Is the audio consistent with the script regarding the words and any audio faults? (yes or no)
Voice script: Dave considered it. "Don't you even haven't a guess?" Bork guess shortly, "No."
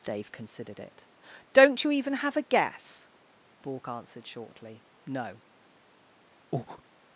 no